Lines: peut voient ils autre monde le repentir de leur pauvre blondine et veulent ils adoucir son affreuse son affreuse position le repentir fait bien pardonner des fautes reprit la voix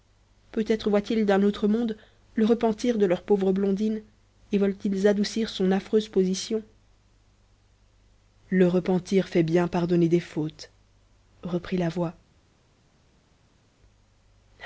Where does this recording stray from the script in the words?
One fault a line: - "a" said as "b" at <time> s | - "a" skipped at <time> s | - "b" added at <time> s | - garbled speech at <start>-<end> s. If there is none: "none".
- "être" added at 0.7 s
- "d'un" added at 1.3 s
- "son affreuse" skipped at 6.1 s